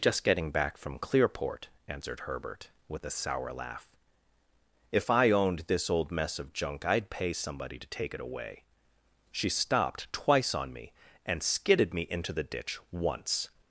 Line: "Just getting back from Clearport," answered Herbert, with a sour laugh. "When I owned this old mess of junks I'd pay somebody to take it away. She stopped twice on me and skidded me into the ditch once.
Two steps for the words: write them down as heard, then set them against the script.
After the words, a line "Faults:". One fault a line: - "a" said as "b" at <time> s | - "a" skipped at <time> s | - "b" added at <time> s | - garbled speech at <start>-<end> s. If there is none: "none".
"Just getting back from Clearport," answered Herbert, with a sour laugh. "If I owned this old mess of junk I'd pay somebody to take it away. She stopped twice on me and skidded me into the ditch once.
Faults:
- "When" said as "If" at 4.9 s
- "junks" said as "junk" at 6.5 s